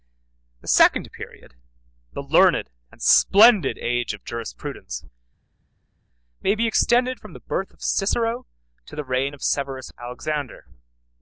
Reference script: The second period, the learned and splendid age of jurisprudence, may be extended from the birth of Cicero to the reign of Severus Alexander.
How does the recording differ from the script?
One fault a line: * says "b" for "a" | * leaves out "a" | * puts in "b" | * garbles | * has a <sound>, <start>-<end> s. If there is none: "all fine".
all fine